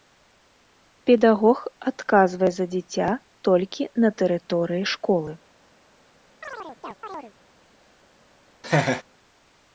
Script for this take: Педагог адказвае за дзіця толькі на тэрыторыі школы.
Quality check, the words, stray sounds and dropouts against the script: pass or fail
fail